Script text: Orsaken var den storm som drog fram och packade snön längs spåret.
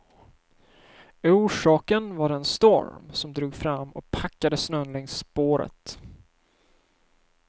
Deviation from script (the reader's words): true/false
false